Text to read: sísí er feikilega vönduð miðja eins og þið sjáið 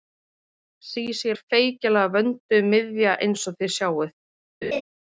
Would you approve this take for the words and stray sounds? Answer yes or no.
no